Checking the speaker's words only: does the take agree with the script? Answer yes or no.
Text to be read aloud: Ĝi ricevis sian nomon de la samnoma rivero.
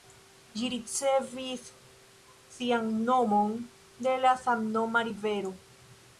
yes